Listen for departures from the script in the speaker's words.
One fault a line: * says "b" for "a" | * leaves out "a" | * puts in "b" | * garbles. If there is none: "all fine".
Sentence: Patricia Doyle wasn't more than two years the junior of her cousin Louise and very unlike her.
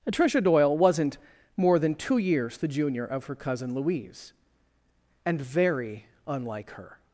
all fine